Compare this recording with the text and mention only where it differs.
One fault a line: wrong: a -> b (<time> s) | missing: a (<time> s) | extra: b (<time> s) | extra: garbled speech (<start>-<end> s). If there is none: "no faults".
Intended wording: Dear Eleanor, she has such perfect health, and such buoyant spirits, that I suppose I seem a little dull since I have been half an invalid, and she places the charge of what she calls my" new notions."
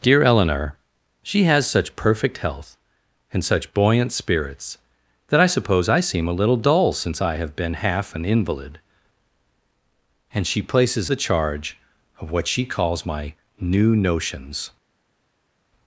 no faults